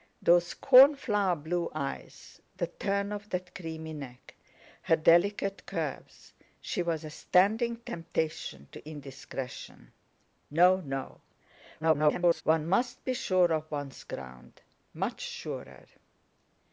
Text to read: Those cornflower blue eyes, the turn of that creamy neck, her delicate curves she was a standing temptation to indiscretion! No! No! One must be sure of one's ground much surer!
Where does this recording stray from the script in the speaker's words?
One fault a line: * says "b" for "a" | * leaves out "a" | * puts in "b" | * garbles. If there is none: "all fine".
* garbles